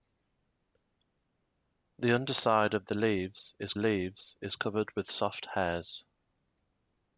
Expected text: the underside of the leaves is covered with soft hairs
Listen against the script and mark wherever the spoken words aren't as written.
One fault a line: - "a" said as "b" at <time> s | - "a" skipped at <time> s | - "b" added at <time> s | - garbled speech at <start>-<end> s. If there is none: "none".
- "leaves is" added at 3.8 s